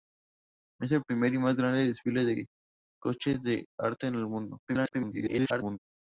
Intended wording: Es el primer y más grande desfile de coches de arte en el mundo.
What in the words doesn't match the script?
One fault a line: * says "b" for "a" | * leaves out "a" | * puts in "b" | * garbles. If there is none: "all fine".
* garbles